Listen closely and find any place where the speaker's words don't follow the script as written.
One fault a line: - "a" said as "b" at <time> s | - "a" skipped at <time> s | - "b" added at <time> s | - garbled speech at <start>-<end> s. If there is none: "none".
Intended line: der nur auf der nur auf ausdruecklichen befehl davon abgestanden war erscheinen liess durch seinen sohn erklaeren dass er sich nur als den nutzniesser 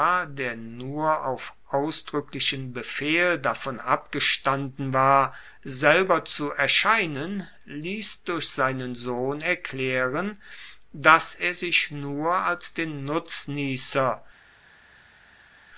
- "der nur auf" skipped at 1.5 s
- "selber zu" added at 5.6 s